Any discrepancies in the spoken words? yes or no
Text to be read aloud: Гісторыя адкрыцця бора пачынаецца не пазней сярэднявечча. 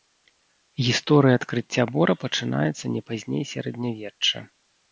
no